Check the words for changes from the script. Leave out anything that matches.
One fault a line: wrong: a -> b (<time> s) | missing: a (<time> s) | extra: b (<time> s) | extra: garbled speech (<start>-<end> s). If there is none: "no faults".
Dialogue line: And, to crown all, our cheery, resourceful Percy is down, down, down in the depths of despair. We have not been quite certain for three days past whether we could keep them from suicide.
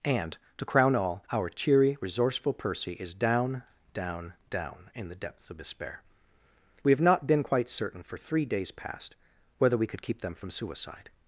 no faults